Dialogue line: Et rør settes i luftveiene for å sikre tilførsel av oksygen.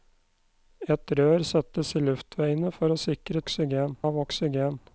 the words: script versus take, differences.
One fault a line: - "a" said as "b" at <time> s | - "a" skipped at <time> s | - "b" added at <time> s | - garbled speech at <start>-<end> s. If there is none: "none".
- "tilførsel" said as "oksygen" at 3.4 s